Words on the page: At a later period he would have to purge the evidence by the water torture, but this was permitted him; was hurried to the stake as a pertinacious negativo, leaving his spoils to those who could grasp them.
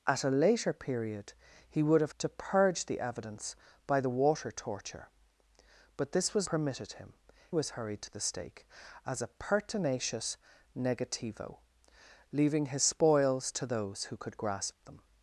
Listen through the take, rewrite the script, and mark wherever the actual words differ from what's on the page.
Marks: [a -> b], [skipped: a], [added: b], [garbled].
At a later period he would have to purge the evidence by the water torture, but this was permitted him; was hurried to the stake as a pertinacious negativo, leaving his spoils to those who could grasp them.